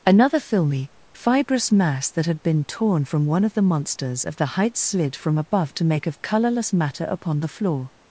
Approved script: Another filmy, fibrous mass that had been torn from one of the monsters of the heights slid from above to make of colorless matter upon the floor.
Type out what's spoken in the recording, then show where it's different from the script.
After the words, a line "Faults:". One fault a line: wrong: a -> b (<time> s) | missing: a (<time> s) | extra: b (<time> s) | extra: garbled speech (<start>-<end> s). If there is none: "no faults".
Another filmy, fibrous mass that had been torn from one of the monsters of the heights slid from above to make of colorless matter upon the floor.
Faults:
no faults